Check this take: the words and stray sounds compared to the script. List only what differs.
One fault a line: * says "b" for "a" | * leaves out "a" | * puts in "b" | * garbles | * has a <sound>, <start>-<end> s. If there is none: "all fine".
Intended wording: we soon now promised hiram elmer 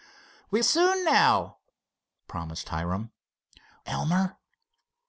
all fine